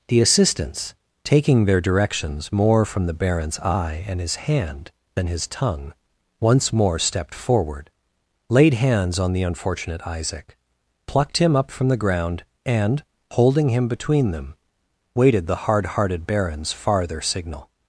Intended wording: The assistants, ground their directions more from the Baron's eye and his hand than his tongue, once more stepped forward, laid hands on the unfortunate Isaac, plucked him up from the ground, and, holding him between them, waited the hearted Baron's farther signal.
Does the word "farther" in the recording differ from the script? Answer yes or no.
no